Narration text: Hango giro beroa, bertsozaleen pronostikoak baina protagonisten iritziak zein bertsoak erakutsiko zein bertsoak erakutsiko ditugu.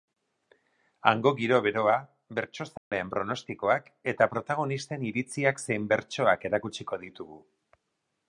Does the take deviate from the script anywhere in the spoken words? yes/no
yes